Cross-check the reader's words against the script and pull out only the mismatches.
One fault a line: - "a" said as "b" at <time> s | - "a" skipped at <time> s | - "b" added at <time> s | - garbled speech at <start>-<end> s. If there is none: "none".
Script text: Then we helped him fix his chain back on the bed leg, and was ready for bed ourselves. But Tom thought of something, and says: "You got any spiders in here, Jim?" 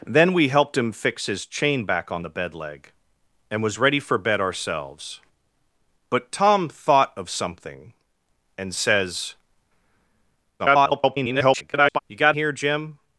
- garbled speech at 10.6-12.0 s
- "any spiders in" skipped at 12.4 s